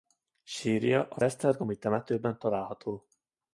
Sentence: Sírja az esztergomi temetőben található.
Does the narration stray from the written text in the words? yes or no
no